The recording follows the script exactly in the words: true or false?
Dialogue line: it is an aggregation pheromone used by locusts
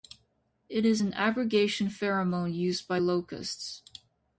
true